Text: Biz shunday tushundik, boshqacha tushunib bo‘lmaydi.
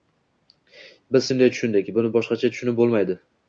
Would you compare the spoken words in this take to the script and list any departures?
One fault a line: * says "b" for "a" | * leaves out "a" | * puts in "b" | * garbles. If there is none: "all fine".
* puts in "buni"